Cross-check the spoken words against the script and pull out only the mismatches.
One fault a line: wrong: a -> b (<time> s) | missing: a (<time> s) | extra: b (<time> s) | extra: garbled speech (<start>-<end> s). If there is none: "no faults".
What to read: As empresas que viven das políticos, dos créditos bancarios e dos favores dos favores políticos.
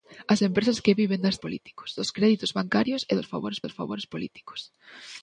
no faults